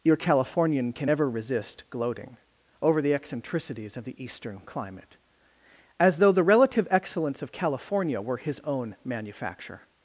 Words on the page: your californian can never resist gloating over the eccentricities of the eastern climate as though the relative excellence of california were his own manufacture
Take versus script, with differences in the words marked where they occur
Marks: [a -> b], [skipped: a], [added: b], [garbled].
your californian can [never -> ever] resist gloating over the eccentricities of the eastern climate as though the relative excellence of california were his own manufacture